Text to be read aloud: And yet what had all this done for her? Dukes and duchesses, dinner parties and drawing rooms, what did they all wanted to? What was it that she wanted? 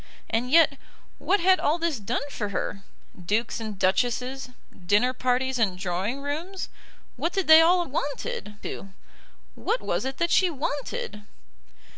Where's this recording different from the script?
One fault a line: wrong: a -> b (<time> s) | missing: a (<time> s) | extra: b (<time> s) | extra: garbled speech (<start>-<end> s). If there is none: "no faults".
no faults